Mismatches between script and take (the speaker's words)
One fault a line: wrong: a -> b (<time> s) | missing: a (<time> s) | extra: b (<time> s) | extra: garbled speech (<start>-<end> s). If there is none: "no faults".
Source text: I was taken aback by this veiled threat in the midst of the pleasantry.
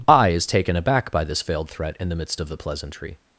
wrong: was -> is (0.3 s)